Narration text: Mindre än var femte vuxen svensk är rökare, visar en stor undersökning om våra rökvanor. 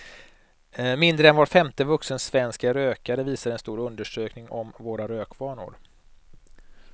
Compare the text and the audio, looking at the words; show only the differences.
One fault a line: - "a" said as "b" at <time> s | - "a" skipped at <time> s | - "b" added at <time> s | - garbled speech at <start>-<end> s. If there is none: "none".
none